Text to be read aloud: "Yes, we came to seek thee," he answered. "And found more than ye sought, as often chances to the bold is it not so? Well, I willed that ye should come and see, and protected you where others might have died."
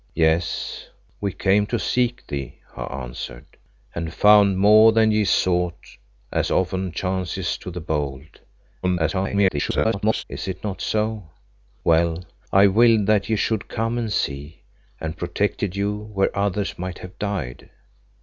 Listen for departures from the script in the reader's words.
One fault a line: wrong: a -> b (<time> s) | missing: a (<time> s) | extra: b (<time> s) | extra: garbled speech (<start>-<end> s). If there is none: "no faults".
extra: garbled speech (8.8-10.2 s)